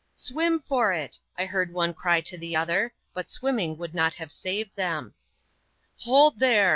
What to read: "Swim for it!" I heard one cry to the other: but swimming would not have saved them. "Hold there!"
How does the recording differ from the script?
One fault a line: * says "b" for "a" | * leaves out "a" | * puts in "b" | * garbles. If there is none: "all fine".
all fine